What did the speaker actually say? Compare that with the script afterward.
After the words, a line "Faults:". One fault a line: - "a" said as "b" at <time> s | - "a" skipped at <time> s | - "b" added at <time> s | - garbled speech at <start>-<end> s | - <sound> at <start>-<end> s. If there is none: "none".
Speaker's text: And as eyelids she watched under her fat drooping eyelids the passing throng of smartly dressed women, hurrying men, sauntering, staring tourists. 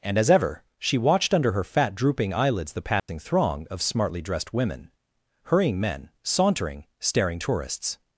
And as ever she watched under her fat drooping eyelids the passing throng of smartly dressed women, hurrying men, sauntering, staring tourists.
Faults:
- "eyelids" said as "ever" at 0.3 s
- dropout at 3.0-3.1 s